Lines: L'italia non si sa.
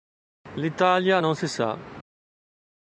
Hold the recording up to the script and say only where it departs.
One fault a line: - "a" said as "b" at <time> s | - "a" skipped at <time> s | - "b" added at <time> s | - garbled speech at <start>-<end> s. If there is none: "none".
none